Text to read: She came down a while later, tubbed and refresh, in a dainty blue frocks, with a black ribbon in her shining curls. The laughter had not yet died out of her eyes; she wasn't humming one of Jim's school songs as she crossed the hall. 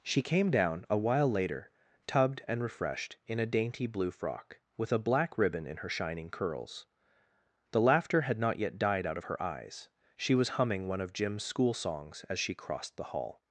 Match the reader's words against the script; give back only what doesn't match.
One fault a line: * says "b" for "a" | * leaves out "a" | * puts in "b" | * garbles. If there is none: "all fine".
* says "refreshed" for "refresh"
* says "frock" for "frocks"
* says "was" for "wasn't"